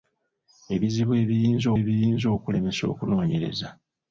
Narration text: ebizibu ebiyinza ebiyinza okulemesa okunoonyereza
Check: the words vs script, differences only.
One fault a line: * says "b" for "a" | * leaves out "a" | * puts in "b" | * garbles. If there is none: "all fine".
all fine